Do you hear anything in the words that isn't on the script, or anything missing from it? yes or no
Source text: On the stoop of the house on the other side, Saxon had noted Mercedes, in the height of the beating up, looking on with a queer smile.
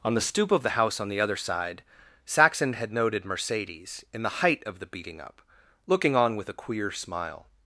no